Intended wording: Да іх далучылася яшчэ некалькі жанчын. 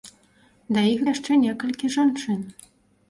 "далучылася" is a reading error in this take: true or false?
true